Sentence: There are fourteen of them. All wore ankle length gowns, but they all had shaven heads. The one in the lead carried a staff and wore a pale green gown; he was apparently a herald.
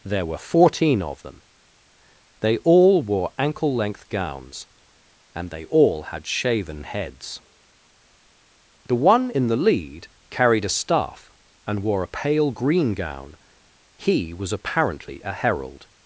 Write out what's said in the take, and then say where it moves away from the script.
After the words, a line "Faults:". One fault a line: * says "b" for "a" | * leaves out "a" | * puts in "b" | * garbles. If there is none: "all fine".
There were fourteen of them. They all wore ankle length gowns, and they all had shaven heads. The one in the lead carried a staff and wore a pale green gown; he was apparently a herald.
Faults:
* says "were" for "are"
* puts in "They"
* says "and" for "but"